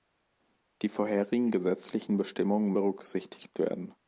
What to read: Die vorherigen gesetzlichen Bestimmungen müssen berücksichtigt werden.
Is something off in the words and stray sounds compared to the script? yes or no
yes